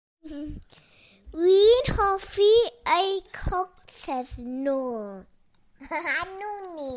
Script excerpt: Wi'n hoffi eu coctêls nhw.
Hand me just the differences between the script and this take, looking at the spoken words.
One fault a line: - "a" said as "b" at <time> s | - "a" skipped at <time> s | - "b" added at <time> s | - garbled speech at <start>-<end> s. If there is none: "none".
none